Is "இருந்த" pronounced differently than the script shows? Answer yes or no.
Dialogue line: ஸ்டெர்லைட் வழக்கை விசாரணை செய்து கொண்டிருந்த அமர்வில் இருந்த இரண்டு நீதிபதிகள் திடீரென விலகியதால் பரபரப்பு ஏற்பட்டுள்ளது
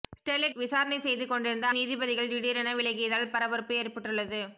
yes